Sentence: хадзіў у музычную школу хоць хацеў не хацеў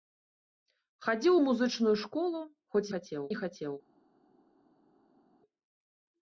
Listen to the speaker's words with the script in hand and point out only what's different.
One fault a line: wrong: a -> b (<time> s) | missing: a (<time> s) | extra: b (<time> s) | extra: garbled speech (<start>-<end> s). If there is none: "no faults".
no faults